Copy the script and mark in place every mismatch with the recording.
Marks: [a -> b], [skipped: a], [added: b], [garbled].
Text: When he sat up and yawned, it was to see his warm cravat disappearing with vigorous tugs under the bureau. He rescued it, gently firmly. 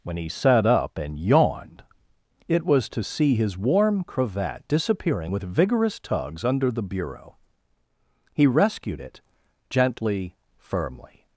When he sat up and yawned, it was to see his warm cravat disappearing with vigorous tugs under the bureau. He rescued it, gently firmly.